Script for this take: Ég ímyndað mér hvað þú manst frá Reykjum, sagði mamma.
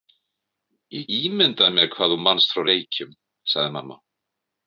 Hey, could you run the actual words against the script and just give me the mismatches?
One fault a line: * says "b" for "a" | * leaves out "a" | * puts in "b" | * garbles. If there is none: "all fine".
all fine